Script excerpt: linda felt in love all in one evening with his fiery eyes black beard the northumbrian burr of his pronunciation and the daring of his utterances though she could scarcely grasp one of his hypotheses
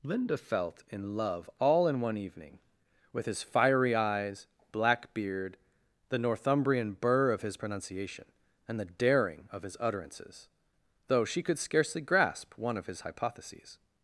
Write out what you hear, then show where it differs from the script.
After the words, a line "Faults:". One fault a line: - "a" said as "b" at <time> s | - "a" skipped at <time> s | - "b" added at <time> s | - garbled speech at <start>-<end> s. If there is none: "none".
linda felt in love all in one evening with his fiery eyes black beard the northumbrian burr of his pronunciation and the daring of his utterances though she could scarcely grasp one of his hypotheses
Faults:
none